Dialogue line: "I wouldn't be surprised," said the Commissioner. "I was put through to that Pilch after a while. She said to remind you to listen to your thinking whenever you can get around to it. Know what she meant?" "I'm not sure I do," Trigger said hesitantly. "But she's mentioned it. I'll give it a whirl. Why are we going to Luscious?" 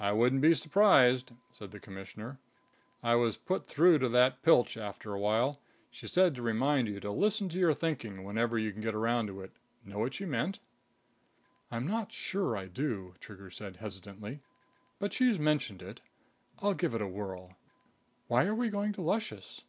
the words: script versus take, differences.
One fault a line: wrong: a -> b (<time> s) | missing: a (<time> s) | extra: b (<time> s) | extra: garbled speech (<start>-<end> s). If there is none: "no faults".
no faults